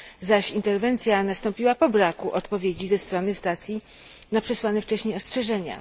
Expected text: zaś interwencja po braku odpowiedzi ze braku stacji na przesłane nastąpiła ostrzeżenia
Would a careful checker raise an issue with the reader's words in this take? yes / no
yes